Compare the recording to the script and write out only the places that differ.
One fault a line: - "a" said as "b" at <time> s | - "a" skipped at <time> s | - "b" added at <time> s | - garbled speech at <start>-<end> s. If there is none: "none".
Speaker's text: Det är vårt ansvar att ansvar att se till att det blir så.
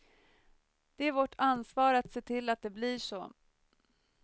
- "ansvar att" skipped at 2.1 s